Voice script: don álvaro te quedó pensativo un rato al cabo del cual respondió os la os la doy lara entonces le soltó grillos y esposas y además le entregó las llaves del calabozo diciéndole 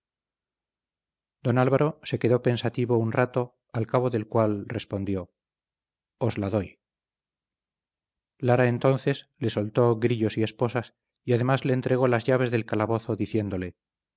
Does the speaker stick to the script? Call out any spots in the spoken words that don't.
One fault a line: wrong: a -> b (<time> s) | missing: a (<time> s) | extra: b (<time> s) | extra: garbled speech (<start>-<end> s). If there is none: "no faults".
wrong: te -> se (2.0 s)
missing: os la (6.5 s)